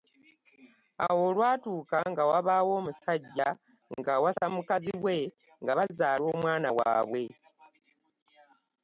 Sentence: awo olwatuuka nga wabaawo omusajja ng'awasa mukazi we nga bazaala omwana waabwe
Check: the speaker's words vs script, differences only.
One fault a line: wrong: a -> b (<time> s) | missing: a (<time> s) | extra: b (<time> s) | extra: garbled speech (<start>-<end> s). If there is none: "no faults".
no faults